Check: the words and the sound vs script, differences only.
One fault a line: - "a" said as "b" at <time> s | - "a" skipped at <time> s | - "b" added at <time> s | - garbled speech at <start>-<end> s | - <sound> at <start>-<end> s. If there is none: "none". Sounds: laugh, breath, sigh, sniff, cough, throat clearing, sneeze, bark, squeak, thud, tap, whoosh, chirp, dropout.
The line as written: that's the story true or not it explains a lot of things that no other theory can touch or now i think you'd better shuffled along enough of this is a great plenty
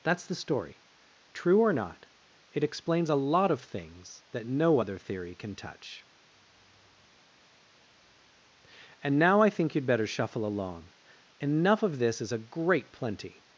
- "or" said as "and" at 9.0 s
- "shuffled" said as "shuffle" at 10.1 s